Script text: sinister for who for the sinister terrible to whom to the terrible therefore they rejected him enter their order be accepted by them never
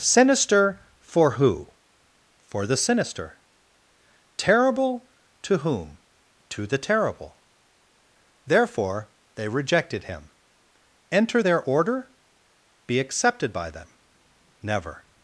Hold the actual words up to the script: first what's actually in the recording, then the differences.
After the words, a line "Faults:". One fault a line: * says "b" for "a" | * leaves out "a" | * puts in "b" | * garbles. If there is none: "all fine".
sinister for who for the sinister terrible to whom to the terrible therefore they rejected him enter their order be accepted by them never
Faults:
all fine